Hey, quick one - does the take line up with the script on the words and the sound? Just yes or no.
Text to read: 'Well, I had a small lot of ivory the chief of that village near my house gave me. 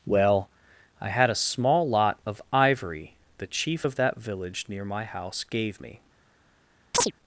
no